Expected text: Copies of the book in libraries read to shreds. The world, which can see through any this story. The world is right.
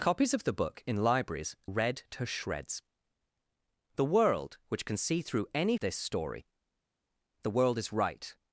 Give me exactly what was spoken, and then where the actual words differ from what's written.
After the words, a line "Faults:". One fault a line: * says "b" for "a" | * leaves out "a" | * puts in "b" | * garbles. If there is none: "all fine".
Copies of the book in libraries read to shreds. The world, which can see through any this story. The world is right.
Faults:
all fine